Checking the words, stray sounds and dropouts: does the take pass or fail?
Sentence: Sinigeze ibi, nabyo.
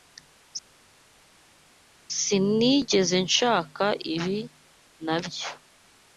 fail